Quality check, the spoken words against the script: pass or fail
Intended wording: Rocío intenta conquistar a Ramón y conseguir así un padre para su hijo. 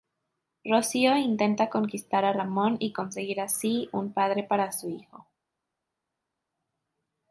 pass